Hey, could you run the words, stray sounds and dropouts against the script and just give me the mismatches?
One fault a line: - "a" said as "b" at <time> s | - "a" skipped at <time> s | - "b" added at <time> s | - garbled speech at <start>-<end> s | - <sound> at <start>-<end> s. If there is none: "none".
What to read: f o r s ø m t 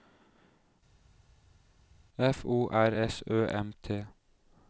none